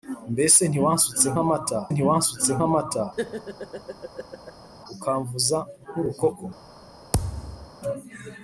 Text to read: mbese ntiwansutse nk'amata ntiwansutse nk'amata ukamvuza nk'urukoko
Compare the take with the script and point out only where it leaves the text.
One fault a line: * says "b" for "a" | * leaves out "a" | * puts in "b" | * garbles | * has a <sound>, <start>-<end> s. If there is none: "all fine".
* has a laugh, 3.2-4.7 s
* has a thud, 7.1-7.7 s